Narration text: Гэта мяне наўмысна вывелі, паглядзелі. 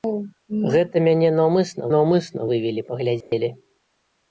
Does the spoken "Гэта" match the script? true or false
true